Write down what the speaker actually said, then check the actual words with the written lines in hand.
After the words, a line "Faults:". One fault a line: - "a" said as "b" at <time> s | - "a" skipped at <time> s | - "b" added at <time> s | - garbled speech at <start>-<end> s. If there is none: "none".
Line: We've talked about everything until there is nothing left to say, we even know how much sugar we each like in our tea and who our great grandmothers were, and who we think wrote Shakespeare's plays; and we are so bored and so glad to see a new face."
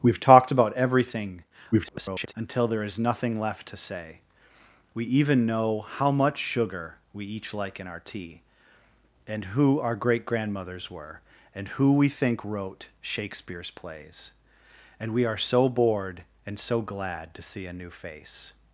We've talked about everything [garbled] until there is nothing left to say, we even know how much sugar we each like in our tea and who our great grandmothers were, and who we think wrote Shakespeare's plays; and we are so bored and so glad to see a new face."
Faults:
- garbled speech at 1.7-2.3 s